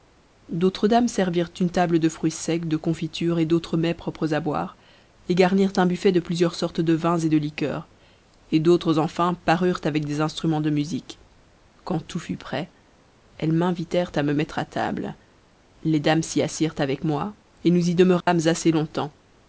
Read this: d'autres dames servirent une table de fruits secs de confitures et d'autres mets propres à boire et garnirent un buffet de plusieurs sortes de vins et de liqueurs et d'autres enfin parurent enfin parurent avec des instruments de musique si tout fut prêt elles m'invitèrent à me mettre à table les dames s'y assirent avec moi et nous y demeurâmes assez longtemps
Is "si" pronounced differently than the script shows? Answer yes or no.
yes